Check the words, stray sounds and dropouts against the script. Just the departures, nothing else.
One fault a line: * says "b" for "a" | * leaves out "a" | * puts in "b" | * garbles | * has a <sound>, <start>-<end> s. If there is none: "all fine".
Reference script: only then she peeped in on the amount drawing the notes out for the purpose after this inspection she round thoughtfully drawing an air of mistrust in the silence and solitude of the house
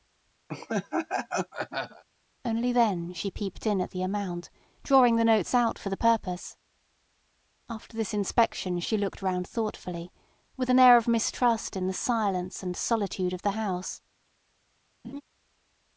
* has a laugh, 0.5-2.0 s
* says "at" for "on"
* puts in "looked"
* says "with" for "drawing"
* has a laugh, 15.0-15.2 s